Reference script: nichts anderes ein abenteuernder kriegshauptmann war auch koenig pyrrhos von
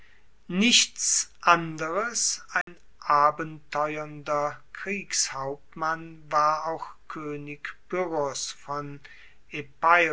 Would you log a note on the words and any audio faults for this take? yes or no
yes